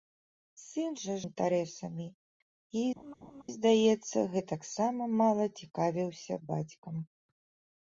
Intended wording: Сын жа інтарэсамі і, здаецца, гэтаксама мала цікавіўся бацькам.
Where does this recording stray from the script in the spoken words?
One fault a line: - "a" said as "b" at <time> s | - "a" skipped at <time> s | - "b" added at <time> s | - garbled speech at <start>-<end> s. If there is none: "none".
none